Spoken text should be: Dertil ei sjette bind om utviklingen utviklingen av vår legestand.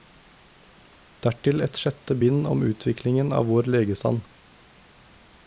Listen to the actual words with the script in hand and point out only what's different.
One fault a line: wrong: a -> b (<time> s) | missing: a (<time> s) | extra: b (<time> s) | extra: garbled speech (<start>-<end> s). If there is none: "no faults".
wrong: ei -> et (1.6 s)
missing: utviklingen (3.3 s)